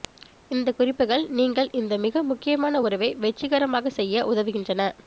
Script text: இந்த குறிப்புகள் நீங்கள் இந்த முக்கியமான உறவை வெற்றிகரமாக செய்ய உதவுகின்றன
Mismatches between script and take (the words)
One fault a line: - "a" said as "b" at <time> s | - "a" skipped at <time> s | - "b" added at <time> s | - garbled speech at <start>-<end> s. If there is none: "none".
- "மிக" added at 2.0 s